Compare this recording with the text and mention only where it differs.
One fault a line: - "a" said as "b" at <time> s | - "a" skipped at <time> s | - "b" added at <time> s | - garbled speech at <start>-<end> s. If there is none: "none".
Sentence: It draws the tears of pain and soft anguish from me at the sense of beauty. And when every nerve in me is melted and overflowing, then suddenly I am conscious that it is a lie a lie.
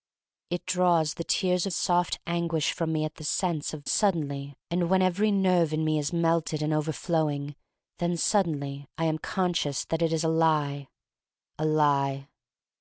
- "of pain and" skipped at 1.7 s
- "beauty" said as "suddenly" at 3.8 s